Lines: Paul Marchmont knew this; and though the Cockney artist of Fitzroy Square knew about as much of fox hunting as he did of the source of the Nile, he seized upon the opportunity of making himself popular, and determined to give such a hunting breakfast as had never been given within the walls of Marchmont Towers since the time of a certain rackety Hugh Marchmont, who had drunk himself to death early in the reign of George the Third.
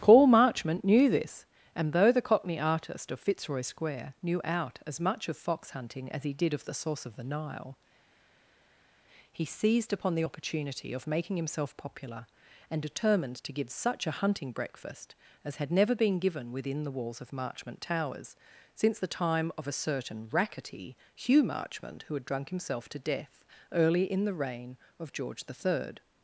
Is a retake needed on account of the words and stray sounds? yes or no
yes